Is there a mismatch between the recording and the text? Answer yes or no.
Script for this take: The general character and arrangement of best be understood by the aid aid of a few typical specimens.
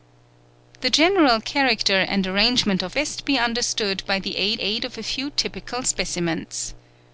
no